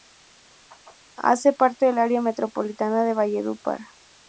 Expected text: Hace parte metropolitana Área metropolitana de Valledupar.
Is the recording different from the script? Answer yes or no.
yes